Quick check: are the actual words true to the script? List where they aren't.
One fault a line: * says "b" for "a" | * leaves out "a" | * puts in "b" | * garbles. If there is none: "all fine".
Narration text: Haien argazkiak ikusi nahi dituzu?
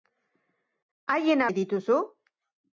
* leaves out "argazkiak ikusi"